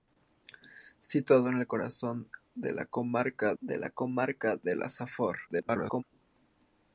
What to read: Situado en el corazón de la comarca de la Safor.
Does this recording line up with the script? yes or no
no